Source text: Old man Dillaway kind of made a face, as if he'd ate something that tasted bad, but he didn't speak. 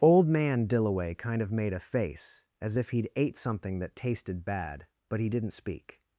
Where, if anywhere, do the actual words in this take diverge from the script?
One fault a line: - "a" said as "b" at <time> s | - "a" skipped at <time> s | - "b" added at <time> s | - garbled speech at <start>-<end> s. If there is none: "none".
none